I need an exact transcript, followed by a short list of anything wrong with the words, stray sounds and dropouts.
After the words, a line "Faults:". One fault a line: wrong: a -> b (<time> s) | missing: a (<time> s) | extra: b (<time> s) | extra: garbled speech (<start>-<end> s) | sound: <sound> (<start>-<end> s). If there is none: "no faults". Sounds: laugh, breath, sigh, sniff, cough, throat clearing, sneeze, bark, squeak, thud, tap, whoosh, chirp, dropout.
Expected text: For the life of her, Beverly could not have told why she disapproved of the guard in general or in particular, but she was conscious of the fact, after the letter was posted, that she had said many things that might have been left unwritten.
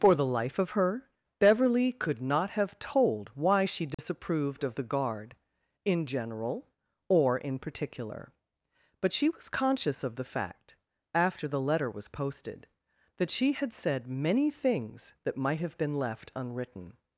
For the life of her, Beverly could not have told why she disapproved of the guard in general or in particular, but she was conscious of the fact, after the letter was posted, that she had said many things that might have been left unwritten.
Faults:
sound: dropout (3.9-4.0 s)